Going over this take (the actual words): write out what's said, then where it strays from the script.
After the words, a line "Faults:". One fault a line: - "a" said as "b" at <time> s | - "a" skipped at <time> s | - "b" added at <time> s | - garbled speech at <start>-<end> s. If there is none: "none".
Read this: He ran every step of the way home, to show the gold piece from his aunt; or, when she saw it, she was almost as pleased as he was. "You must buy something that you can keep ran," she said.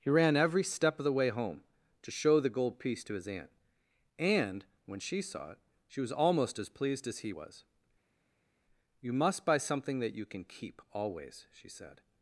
He ran every step of the way home, to show the gold piece to his aunt; and, when she saw it, she was almost as pleased as he was. "You must buy something that you can keep always," she said.
Faults:
- "from" said as "to" at 3.0 s
- "or" said as "and" at 4.2 s
- "ran" said as "always" at 10.9 s